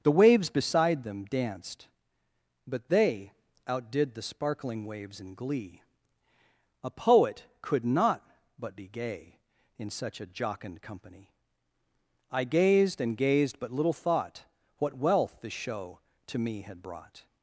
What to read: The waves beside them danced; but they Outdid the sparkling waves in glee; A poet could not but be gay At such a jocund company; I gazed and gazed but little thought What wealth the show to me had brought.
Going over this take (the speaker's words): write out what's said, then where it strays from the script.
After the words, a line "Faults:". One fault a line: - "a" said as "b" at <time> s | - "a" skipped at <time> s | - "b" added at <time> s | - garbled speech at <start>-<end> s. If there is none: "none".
The waves beside them danced; but they Outdid the sparkling waves in glee; A poet could not but be gay In such a jocund company; I gazed and gazed but little thought What wealth the show to me had brought.
Faults:
- "At" said as "In" at 9.8 s